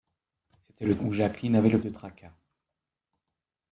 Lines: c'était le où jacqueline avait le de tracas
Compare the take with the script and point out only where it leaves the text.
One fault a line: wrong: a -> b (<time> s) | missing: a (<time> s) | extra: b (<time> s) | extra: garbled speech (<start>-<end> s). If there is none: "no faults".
no faults